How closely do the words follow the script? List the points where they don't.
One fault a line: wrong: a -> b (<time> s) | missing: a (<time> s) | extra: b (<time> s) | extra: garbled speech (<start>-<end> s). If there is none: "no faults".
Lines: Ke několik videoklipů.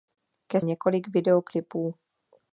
no faults